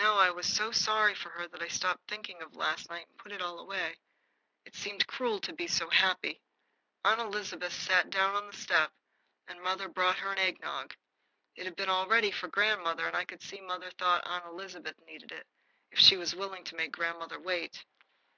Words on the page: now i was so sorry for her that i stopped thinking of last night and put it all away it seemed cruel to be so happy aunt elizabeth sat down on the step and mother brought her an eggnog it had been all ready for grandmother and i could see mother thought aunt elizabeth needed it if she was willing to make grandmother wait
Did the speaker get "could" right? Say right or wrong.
right